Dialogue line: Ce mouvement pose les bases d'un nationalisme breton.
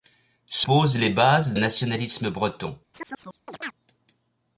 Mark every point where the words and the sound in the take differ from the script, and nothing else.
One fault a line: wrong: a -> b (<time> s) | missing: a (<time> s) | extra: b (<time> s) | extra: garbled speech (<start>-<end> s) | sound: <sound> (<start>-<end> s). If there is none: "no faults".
missing: mouvement (0.7 s)
missing: d'un (1.6 s)
sound: chirp (2.9-3.7 s)